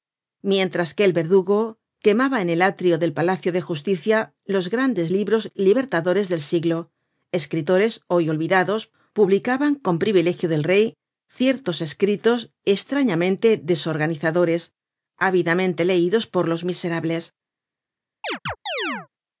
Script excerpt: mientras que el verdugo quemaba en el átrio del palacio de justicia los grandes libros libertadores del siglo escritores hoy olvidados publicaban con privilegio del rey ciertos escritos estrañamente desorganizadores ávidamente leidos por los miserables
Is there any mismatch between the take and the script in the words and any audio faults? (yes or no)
yes